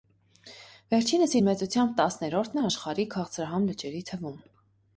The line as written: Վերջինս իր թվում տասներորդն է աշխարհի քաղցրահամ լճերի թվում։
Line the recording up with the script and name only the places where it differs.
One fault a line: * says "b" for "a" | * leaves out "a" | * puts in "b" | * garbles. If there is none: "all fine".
* says "մեծությամբ" for "թվում"